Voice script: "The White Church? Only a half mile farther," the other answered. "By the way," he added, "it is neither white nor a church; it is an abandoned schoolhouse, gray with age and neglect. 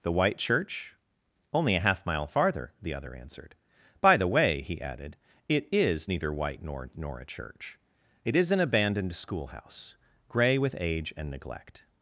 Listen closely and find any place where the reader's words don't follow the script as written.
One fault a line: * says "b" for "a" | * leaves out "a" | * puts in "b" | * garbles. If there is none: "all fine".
* puts in "nor"